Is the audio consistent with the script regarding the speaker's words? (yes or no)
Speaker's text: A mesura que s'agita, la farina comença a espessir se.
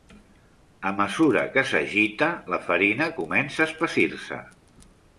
yes